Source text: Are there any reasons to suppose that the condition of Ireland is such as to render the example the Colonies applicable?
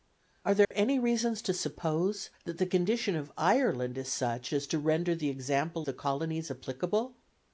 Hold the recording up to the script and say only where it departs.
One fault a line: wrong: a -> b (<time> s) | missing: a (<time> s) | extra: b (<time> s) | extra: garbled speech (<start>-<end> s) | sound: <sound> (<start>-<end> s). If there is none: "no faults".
sound: dropout (0.6-0.7 s)